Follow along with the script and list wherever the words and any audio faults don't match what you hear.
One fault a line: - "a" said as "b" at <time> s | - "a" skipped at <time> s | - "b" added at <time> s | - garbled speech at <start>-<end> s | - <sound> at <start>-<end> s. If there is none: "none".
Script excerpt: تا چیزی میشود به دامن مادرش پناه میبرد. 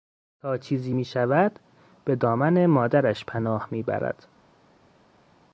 none